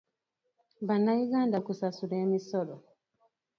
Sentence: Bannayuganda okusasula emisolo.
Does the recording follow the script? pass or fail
pass